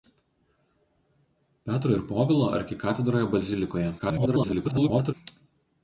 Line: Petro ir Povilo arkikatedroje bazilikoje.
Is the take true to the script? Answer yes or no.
no